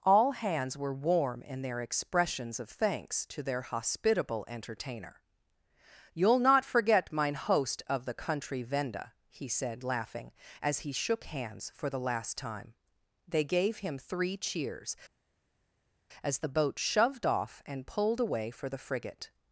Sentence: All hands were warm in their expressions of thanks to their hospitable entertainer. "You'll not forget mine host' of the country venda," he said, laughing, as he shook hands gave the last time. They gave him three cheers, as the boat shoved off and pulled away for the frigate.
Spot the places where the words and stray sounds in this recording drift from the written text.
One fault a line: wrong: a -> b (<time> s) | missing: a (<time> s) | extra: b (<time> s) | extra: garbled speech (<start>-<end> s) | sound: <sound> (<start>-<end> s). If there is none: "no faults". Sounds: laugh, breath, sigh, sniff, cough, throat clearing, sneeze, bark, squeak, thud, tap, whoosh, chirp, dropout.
wrong: gave -> for (11.7 s)